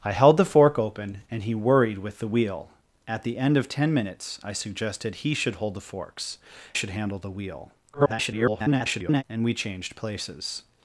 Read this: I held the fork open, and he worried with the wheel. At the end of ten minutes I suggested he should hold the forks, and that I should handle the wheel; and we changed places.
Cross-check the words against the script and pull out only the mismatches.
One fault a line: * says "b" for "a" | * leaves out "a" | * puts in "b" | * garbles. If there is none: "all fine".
* leaves out "and that I"
* garbles